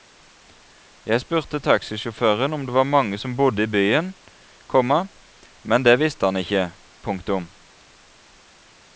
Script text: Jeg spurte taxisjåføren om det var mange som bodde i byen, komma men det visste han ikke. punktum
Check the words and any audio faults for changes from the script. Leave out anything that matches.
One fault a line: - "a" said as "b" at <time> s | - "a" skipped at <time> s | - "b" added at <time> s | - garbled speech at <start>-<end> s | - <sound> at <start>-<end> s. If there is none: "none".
none